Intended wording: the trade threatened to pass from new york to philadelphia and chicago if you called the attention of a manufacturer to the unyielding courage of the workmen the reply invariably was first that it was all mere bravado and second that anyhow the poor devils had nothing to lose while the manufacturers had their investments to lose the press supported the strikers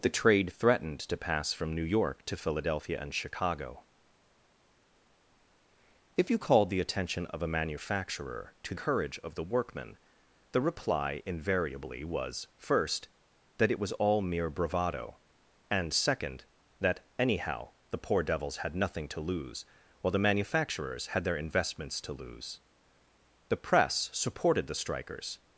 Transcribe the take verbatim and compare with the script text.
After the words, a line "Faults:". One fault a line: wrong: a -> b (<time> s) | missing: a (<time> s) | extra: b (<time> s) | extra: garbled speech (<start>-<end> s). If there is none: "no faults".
the trade threatened to pass from new york to philadelphia and chicago if you called the attention of a manufacturer to courage of the workmen the reply invariably was first that it was all mere bravado and second that anyhow the poor devils had nothing to lose while the manufacturers had their investments to lose the press supported the strikers
Faults:
missing: the unyielding (8.8 s)